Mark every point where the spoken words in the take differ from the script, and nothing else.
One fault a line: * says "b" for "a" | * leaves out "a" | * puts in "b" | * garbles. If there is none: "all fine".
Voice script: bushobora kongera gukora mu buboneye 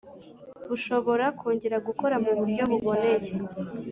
* puts in "buryo"